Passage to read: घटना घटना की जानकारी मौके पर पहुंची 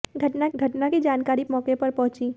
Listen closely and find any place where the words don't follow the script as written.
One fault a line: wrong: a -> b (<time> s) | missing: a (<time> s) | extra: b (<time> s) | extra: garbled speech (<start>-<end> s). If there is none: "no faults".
no faults